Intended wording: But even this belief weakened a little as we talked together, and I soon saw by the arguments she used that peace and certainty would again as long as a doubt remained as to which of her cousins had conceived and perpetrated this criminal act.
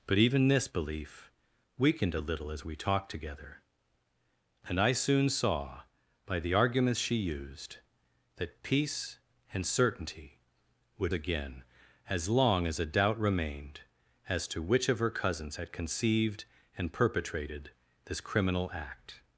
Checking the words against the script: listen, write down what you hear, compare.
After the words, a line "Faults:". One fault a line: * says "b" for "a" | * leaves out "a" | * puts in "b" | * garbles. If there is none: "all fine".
But even this belief weakened a little as we talked together, and I soon saw by the arguments she used that peace and certainty would again as long as a doubt remained as to which of her cousins had conceived and perpetrated this criminal act.
Faults:
all fine